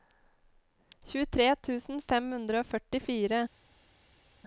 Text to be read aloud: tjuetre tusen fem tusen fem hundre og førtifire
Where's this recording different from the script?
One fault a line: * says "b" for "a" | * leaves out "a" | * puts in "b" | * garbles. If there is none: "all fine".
* leaves out "tusen fem"